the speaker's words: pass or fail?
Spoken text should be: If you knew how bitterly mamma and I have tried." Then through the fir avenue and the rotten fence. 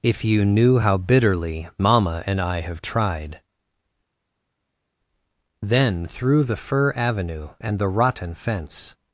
pass